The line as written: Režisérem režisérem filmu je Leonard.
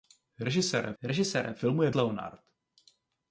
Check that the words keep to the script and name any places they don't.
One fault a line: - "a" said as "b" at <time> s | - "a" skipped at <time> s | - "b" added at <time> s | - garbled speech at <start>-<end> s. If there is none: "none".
none